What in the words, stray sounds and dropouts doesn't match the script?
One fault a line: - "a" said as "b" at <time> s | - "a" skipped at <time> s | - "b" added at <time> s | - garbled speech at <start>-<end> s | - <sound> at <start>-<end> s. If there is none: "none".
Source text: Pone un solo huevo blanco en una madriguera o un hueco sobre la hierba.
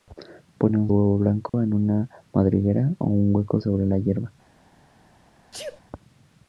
- "solo" skipped at 0.9 s
- dropout at 1.5-1.5 s
- sneeze at 5.5-5.8 s